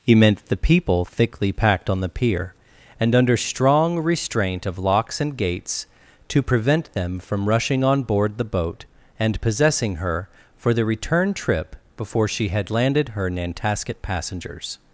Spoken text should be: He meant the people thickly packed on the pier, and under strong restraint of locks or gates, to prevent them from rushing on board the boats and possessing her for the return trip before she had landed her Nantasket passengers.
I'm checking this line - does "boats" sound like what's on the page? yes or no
no